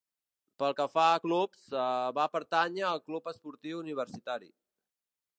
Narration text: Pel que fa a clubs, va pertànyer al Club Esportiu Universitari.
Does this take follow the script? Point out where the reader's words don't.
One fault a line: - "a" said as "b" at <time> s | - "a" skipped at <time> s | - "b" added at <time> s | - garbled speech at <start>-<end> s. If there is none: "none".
none